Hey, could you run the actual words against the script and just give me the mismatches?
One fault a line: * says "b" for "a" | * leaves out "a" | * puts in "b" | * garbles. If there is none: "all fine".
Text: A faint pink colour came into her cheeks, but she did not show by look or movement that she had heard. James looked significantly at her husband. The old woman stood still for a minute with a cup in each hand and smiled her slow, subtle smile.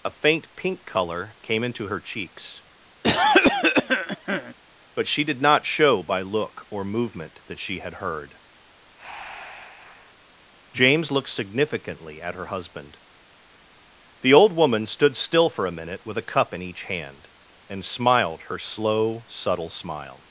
all fine